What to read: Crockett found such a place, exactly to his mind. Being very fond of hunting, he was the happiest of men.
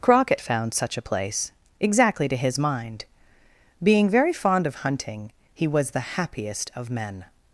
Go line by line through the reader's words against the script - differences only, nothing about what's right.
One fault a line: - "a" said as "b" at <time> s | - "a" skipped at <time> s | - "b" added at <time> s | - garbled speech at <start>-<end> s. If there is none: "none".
none